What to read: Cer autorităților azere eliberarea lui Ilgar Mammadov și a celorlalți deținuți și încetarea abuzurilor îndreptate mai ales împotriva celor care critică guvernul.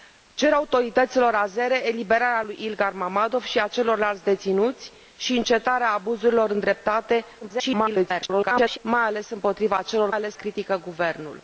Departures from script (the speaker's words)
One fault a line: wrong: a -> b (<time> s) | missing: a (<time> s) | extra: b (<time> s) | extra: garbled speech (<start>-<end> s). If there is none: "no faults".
extra: garbled speech (7.4-8.8 s)
wrong: care -> ales (10.1 s)